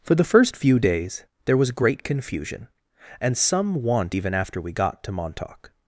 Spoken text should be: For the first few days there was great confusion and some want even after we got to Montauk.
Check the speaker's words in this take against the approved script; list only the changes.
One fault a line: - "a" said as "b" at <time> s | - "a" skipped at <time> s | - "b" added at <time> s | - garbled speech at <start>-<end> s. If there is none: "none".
none